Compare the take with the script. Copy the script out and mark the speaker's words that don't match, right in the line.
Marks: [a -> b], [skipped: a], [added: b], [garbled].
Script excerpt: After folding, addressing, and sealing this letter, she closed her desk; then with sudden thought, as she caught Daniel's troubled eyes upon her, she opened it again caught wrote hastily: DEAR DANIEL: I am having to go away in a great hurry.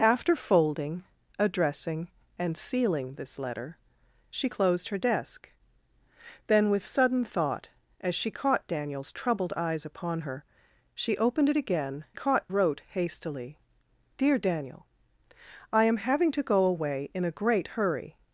After folding, addressing, and sealing this letter, she closed her desk; then with sudden thought, as she caught Daniel's troubled eyes upon her, she opened it again caught wrote hastily: DEAR DANIEL: I am having to go away in a great hurry.